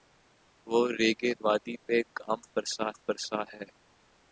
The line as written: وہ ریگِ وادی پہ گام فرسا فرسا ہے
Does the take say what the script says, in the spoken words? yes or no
yes